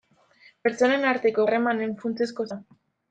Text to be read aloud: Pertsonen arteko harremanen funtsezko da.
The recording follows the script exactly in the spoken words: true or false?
true